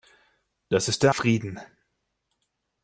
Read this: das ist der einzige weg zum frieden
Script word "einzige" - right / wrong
wrong